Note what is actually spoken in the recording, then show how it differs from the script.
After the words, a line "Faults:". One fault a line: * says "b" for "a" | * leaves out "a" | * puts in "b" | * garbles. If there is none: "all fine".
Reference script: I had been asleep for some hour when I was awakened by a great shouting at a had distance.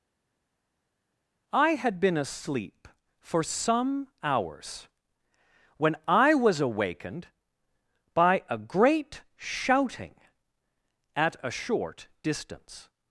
I had been asleep for some hours when I was awakened by a great shouting at a short distance.
Faults:
* says "hours" for "hour"
* says "short" for "had"